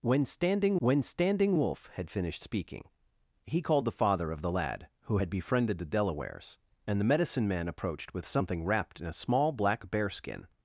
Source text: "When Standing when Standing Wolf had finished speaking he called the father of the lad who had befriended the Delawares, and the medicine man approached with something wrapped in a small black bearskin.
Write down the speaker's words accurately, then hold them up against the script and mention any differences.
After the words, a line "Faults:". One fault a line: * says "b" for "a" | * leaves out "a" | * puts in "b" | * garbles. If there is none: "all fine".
"When Standing when Standing Wolf had finished speaking he called the father of the lad who had befriended the Delawares, and the medicine man approached with something wrapped in a small black bearskin.
Faults:
all fine